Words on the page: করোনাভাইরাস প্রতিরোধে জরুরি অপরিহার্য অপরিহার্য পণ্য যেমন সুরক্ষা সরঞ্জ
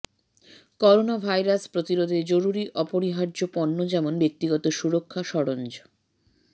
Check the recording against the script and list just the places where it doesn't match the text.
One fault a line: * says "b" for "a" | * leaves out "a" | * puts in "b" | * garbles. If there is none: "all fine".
* leaves out "অপরিহার্য"
* puts in "ব্যক্তিগত"